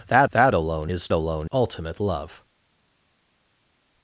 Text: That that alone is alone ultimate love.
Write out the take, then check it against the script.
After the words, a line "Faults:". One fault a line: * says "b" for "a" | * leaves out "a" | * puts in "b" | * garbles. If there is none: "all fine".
That that alone is alone ultimate love.
Faults:
all fine